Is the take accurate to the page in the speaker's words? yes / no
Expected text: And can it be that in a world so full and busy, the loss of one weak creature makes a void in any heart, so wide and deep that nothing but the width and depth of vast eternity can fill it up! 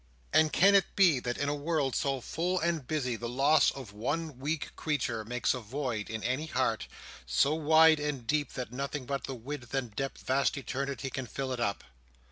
no